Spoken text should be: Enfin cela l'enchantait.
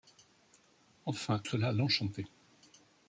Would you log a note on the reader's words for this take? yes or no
no